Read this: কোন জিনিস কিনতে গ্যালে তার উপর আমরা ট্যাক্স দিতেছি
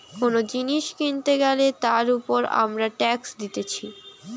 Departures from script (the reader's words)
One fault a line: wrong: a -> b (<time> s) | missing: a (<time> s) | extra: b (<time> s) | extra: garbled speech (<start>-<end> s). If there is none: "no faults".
no faults